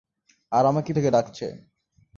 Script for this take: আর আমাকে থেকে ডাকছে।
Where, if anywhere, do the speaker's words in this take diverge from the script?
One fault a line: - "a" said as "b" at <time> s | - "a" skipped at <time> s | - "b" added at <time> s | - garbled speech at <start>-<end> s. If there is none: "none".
none